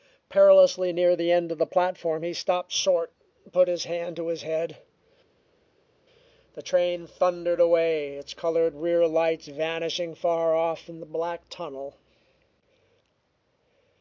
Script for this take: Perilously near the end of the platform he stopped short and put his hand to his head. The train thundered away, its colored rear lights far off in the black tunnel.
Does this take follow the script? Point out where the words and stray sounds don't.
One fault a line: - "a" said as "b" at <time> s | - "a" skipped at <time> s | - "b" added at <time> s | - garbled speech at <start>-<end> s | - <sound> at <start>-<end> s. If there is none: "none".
- "vanishing" added at 9.5 s